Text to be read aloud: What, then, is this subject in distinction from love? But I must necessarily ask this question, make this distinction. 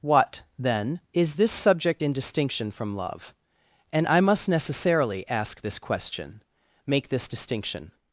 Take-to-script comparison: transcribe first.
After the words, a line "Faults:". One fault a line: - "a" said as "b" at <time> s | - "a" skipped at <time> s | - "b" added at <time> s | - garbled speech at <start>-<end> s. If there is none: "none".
What, then, is this subject in distinction from love? And I must necessarily ask this question, make this distinction.
Faults:
- "But" said as "And" at 3.9 s